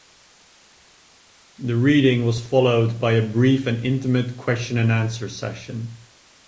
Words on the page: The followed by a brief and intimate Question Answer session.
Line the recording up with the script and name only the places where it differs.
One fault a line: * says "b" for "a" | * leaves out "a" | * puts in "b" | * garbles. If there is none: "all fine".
* puts in "reading was"
* puts in "and"